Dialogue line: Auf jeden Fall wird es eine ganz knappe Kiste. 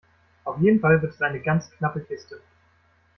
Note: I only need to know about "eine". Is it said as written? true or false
true